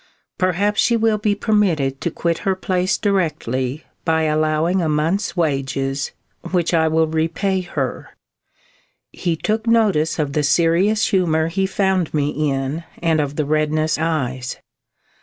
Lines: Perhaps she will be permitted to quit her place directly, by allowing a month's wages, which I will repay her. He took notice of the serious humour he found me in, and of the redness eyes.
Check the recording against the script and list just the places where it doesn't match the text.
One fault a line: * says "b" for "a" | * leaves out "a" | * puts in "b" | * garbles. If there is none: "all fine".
all fine